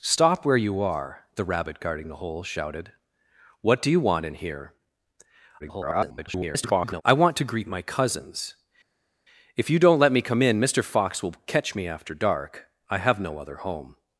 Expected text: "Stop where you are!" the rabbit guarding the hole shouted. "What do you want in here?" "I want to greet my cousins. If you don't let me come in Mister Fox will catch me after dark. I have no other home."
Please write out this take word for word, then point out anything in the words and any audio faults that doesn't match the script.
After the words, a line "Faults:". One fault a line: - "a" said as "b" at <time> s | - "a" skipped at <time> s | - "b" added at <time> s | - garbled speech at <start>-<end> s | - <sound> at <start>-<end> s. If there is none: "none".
"Stop where you are!" the rabbit guarding the hole shouted. "What do you want in here?" [garbled] "I want to greet my cousins. If you don't let me come in Mister Fox will catch me after dark. I have no other home."
Faults:
- garbled speech at 5.6-7.0 s